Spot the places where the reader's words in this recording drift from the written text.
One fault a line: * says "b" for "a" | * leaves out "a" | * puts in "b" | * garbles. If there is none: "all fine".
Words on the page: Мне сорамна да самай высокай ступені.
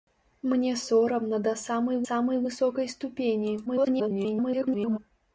* puts in "самай"
* garbles